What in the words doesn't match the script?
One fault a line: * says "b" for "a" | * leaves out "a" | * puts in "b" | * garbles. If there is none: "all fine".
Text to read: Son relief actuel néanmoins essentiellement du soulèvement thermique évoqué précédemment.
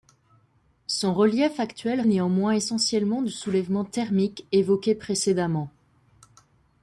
all fine